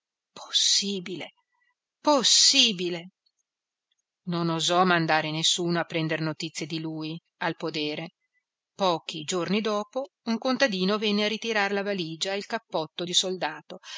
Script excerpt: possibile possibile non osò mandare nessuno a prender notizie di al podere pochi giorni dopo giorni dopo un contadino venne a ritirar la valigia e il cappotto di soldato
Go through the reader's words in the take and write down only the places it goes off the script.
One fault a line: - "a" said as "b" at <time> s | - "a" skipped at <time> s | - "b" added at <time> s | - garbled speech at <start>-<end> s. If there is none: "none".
- "lui" added at 6.8 s
- "giorni dopo" skipped at 10.1 s